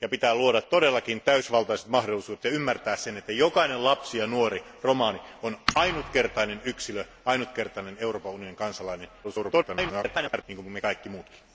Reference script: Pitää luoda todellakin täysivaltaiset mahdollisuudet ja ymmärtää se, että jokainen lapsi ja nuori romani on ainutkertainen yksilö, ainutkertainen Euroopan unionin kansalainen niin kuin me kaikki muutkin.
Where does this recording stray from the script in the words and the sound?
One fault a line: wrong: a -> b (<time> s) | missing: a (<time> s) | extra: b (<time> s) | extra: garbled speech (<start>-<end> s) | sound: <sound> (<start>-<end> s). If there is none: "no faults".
extra: garbled speech (9.2-10.4 s)